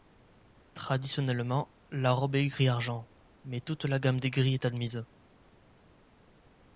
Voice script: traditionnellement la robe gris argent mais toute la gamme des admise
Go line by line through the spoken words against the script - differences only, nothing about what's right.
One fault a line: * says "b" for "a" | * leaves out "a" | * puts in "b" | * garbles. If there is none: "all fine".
* puts in "est"
* puts in "gris est"